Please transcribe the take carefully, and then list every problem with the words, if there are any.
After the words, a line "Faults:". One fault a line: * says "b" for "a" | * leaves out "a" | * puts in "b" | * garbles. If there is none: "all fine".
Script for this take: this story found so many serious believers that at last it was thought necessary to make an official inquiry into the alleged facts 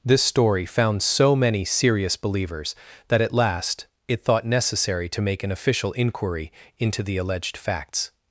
this story found so many serious believers that at last it thought necessary to make an official inquiry into the alleged facts
Faults:
* leaves out "was"